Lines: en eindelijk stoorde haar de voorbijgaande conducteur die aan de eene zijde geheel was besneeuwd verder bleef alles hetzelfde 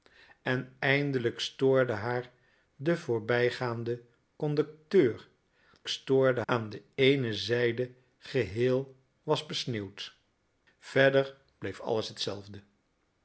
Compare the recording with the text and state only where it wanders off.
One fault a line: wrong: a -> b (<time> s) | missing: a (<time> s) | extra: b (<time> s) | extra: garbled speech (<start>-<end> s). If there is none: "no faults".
wrong: die -> stoorde (5.9 s)